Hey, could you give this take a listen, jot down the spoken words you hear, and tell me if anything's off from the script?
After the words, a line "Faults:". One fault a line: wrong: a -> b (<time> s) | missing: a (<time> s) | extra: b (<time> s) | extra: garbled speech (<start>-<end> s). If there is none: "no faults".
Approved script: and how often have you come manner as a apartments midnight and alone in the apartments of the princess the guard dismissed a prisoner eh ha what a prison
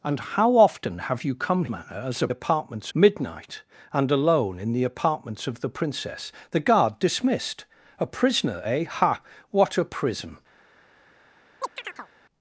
and how often have you come manner as a apartments midnight and alone in the apartments of the princess the guard dismissed a prisoner eh ha what a prison
Faults:
no faults